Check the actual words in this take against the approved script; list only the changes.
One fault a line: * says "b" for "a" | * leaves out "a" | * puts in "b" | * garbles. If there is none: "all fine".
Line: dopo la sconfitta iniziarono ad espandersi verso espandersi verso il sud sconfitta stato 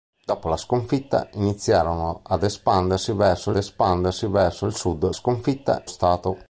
all fine